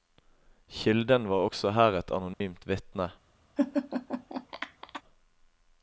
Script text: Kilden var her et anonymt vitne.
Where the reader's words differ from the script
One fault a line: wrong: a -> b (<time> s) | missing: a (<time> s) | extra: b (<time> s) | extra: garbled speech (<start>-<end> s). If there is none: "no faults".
extra: også (1.5 s)